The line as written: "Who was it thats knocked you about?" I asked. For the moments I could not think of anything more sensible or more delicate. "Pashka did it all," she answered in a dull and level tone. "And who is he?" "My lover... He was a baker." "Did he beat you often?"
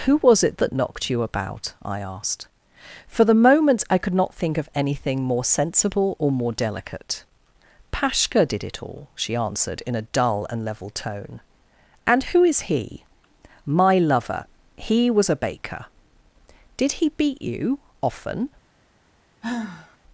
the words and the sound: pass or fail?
fail